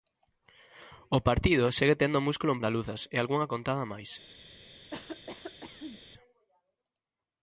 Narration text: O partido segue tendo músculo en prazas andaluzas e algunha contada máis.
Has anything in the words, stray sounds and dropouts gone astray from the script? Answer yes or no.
yes